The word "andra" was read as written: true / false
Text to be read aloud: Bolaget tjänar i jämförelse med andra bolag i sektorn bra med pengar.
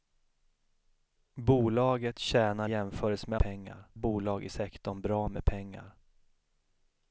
false